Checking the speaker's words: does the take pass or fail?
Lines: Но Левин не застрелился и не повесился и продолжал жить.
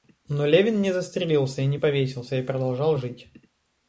pass